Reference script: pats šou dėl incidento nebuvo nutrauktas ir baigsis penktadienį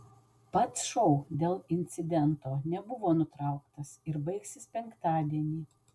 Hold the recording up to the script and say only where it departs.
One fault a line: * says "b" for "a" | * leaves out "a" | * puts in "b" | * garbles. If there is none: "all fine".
all fine